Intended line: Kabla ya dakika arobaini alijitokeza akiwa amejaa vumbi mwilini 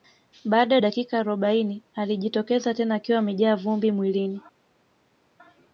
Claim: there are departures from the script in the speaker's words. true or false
true